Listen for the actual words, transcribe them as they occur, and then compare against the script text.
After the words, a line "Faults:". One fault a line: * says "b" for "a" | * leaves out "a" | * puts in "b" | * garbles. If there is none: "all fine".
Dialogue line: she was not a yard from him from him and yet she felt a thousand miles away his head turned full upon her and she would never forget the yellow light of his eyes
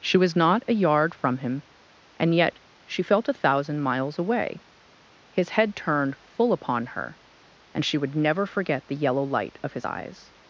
she was not a yard from him and yet she felt a thousand miles away his head turned full upon her and she would never forget the yellow light of his eyes
Faults:
* leaves out "from him"